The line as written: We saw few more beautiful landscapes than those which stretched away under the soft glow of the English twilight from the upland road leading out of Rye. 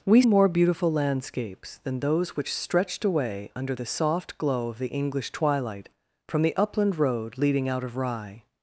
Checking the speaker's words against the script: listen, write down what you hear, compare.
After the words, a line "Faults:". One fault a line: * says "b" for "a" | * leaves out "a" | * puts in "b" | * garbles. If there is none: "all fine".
We more beautiful landscapes than those which stretched away under the soft glow of the English twilight from the upland road leading out of Rye.
Faults:
* leaves out "saw few"